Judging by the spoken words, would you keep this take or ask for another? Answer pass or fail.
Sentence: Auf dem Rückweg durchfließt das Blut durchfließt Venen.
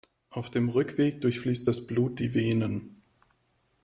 fail